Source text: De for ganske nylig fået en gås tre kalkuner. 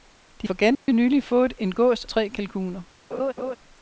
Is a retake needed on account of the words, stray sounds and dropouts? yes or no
yes